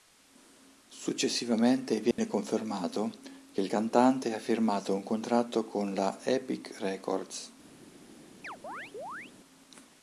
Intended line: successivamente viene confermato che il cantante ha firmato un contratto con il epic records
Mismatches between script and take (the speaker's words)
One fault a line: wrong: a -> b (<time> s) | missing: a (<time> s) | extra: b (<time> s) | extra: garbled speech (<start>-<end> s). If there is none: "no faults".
wrong: il -> la (5.9 s)